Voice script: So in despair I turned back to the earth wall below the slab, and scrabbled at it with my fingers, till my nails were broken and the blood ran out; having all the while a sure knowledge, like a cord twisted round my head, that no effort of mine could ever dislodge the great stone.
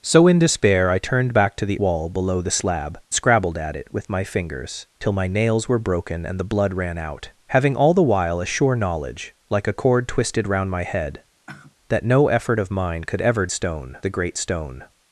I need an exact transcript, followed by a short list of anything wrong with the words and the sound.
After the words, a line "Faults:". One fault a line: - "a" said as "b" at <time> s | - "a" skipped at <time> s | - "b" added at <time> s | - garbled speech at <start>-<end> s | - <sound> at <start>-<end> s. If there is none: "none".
So in despair I turned back to the wall below the slab, scrabbled at it with my fingers, till my nails were broken and the blood ran out; having all the while a sure knowledge, like a cord twisted round my head, that no effort of mine could ever stone the great stone.
Faults:
- "earth" skipped at 1.8 s
- "and" skipped at 3.0 s
- sigh at 11.5-11.7 s
- "dislodge" said as "stone" at 13.5 s